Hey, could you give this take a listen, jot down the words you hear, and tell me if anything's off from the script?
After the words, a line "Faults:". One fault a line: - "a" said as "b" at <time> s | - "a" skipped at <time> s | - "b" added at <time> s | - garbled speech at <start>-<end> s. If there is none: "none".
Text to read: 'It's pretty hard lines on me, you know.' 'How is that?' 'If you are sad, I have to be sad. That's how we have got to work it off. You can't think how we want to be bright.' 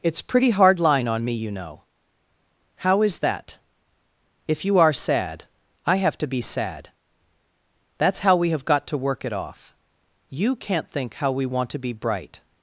'It's pretty hard line on me, you know.' 'How is that?' 'If you are sad, I have to be sad. That's how we have got to work it off. You can't think how we want to be bright.'
Faults:
- "lines" said as "line" at 0.8 s